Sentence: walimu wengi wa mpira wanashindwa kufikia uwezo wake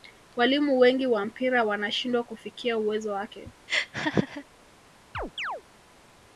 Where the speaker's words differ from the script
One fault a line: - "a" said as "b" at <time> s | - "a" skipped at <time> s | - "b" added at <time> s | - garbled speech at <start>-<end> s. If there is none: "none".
none